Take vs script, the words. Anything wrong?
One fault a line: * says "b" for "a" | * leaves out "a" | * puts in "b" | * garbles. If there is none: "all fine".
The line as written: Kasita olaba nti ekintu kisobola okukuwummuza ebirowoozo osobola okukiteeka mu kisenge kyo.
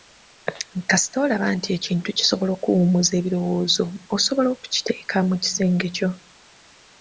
all fine